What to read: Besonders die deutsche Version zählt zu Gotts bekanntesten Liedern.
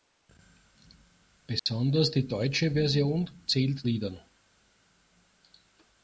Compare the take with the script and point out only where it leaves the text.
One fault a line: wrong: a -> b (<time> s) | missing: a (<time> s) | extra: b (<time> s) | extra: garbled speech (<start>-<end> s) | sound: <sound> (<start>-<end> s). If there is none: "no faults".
sound: dropout (1.6-1.7 s)
missing: zu Gotts bekanntesten (3.9 s)